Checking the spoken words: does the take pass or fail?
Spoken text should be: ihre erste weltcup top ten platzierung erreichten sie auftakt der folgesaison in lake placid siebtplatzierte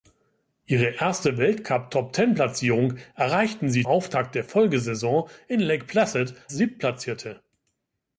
pass